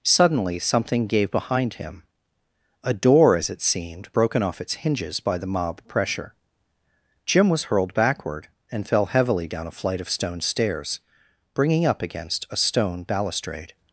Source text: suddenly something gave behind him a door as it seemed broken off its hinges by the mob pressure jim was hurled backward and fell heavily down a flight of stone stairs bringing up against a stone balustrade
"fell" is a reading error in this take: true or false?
false